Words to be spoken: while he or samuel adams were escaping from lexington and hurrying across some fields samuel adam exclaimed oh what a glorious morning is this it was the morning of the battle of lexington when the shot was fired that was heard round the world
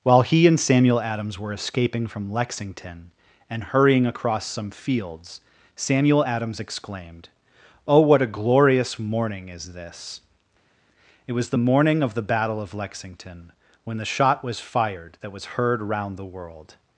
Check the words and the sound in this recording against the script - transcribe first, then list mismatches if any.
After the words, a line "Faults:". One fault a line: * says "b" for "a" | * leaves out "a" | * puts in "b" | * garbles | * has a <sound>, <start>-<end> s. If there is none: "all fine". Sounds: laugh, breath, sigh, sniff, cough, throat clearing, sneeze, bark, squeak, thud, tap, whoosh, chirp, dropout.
while he and samuel adams were escaping from lexington and hurrying across some fields samuel adams exclaimed oh what a glorious morning is this it was the morning of the battle of lexington when the shot was fired that was heard round the world
Faults:
* says "and" for "or"
* says "adams" for "adam"